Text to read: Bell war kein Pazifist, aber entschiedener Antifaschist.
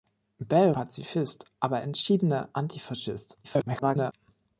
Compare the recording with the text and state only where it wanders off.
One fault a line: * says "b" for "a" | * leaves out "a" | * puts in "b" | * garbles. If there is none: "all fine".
* leaves out "war kein"
* garbles